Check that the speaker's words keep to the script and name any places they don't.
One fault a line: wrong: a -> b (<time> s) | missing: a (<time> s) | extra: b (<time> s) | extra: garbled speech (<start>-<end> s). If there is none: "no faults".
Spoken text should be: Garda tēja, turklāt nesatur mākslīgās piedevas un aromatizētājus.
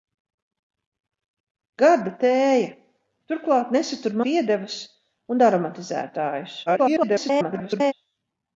missing: mākslīgās (4.2 s)
extra: garbled speech (6.7-7.9 s)